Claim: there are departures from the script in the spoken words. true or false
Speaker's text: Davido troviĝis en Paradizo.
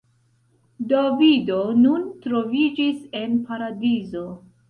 true